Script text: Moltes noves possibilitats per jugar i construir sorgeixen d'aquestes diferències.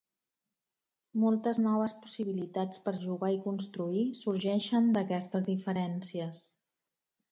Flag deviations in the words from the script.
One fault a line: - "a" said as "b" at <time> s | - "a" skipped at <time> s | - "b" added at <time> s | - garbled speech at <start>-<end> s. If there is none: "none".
none